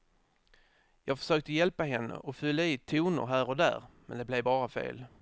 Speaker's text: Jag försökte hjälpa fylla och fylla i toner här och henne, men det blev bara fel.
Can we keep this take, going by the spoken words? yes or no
no